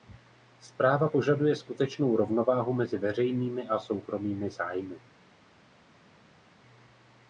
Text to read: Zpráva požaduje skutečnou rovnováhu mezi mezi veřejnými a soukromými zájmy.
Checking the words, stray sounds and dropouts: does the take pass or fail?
fail